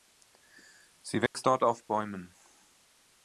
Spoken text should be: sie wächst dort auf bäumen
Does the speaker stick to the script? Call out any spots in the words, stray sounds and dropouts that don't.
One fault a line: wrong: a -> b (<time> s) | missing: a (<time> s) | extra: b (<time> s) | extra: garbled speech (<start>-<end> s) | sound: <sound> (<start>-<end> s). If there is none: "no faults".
sound: dropout (1.3-1.3 s)